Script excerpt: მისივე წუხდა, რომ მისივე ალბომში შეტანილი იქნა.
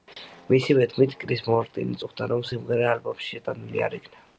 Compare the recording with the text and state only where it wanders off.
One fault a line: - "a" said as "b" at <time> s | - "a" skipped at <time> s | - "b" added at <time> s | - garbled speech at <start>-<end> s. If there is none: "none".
- "თქმით კრის მარტინი" added at 0.9 s
- "მისივე" said as "სიმღერა" at 2.5 s
- "არ" added at 3.9 s